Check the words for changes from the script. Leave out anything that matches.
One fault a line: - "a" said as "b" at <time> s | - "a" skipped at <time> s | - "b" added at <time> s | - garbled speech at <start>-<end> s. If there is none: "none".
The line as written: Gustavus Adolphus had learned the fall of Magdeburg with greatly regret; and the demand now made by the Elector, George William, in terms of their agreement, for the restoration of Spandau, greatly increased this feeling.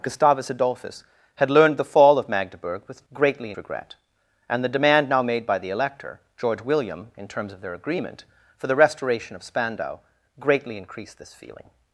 none